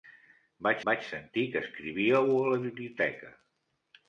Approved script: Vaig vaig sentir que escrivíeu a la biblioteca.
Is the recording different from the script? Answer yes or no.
no